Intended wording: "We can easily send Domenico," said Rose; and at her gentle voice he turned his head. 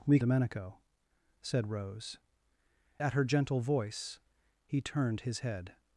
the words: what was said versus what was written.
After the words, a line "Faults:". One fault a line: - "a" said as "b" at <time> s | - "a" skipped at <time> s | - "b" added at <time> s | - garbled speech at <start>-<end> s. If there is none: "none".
"We Domenico," said Rose; at her gentle voice he turned his head.
Faults:
- "can easily send" skipped at 0.2 s
- "and" skipped at 2.2 s